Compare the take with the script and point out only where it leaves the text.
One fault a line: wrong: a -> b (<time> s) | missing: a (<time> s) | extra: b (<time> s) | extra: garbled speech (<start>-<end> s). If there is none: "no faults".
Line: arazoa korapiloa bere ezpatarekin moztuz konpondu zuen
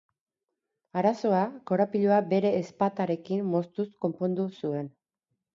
no faults